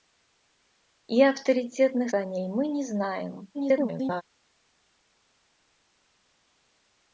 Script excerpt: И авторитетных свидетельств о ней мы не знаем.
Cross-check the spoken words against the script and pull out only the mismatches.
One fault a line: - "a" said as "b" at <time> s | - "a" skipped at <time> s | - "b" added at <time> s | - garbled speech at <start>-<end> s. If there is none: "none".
- "свидетельств" skipped at 2.1 s
- garbled speech at 3.5-4.2 s